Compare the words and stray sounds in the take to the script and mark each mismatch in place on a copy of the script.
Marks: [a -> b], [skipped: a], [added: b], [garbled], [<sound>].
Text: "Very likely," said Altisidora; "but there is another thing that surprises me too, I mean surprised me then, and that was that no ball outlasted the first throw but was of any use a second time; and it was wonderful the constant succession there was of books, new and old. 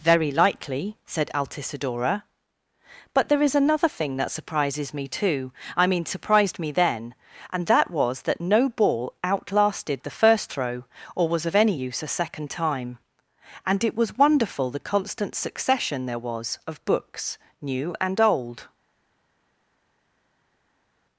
"Very likely," said Altisidora; "but there is another thing that surprises me too, I mean surprised me then, and that was that no ball outlasted the first throw [but -> or] was of any use a second time; and it was wonderful the constant succession there was of books, new and old.